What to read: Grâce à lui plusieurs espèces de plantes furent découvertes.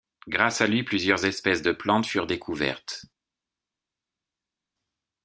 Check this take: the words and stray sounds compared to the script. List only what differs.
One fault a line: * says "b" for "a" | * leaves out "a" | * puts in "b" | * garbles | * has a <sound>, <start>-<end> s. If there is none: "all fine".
all fine